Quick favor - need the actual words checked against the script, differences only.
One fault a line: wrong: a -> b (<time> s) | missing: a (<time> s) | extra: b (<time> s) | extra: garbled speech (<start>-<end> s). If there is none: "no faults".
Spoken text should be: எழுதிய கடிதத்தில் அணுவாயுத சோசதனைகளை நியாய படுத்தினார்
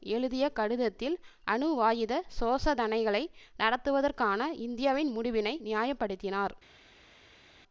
extra: நடத்துவதற்கான இந்தியாவின் முடிவினை (3.6 s)